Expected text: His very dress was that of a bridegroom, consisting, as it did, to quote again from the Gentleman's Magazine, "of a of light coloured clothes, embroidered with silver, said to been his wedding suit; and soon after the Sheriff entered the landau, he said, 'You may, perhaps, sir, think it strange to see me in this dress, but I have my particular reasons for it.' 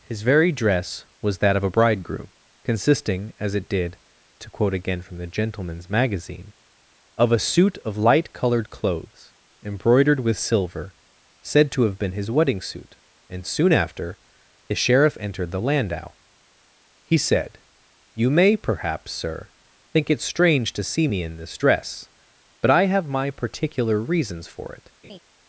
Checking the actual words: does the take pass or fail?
fail